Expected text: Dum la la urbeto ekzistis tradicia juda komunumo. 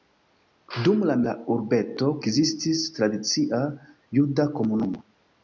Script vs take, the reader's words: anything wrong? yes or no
no